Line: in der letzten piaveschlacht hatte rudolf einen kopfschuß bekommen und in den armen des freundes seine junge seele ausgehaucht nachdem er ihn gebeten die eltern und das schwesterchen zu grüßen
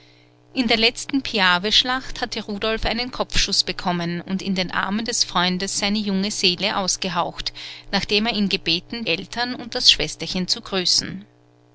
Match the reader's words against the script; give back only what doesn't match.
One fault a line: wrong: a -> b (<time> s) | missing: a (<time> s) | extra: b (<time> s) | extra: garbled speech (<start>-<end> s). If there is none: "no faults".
missing: die (9.0 s)